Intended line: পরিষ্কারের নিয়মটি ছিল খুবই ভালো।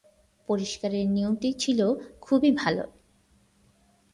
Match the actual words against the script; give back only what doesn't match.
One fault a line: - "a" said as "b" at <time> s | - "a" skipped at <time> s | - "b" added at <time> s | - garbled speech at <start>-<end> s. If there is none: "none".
none